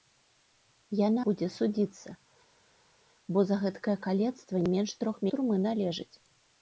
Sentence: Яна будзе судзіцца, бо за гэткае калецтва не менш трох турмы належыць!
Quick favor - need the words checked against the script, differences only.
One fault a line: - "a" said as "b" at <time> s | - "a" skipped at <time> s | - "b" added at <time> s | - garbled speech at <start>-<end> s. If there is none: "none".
none